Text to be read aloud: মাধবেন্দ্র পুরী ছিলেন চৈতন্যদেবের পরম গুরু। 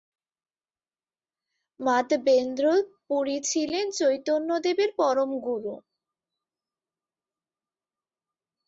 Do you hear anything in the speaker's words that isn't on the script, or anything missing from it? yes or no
no